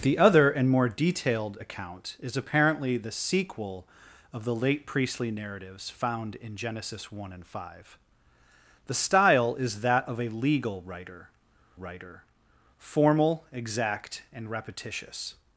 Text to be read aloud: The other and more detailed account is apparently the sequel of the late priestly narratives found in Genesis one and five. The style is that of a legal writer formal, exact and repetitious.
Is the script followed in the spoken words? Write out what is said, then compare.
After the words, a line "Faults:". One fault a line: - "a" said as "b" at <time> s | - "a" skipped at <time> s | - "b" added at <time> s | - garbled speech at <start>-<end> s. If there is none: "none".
The other and more detailed account is apparently the sequel of the late priestly narratives found in Genesis one and five. The style is that of a legal writer writer formal, exact and repetitious.
Faults:
- "writer" added at 11.8 s